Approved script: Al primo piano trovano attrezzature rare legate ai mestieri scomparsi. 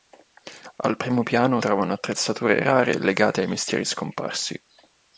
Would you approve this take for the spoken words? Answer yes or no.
yes